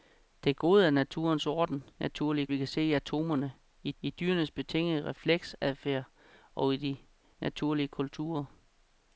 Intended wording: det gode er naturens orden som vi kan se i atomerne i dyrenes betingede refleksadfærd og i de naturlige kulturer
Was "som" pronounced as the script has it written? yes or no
no